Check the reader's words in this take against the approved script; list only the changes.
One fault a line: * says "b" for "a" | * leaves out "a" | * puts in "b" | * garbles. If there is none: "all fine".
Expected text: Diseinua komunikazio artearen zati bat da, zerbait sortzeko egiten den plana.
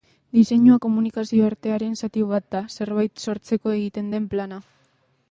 all fine